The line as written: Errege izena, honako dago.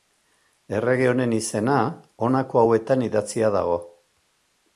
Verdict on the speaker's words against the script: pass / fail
fail